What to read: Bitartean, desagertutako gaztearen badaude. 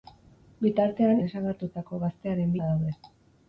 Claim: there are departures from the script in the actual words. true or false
false